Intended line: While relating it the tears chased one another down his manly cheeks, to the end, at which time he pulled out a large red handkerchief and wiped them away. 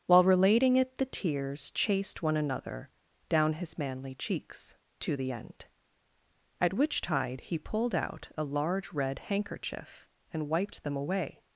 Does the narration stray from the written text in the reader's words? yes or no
yes